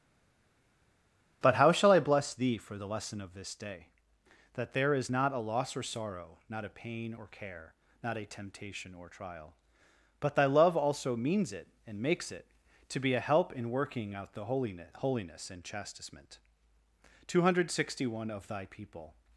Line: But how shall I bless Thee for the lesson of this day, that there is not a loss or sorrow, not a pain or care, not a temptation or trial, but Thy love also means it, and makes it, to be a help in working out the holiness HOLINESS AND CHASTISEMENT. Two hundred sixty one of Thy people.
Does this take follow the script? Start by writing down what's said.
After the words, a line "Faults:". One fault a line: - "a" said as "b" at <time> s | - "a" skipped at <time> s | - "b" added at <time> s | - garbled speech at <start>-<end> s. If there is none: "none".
But how shall I bless Thee for the lesson of this day, that there is not a loss or sorrow, not a pain or care, not a temptation or trial, but Thy love also means it, and makes it, to be a help in working out the holiness HOLINESS AND CHASTISEMENT. Two hundred sixty one of Thy people.
Faults:
none